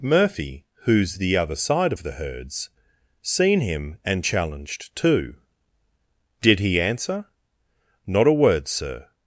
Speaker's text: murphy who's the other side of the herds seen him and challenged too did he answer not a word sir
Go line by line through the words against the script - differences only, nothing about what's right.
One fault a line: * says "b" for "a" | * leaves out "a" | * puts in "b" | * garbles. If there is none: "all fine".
all fine